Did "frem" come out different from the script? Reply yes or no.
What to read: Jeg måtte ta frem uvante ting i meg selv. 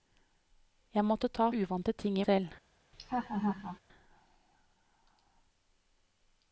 yes